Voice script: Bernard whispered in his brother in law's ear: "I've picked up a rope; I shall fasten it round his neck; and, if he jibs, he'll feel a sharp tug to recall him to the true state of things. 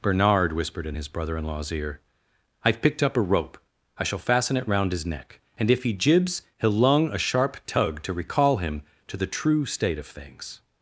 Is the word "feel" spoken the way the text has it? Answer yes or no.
no